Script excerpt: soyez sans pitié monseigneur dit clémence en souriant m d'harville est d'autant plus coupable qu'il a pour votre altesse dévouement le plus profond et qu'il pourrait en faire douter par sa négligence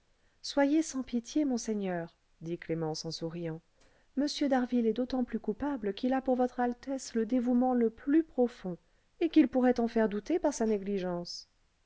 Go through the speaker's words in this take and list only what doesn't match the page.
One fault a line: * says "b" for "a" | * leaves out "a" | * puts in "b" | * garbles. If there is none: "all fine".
* puts in "le"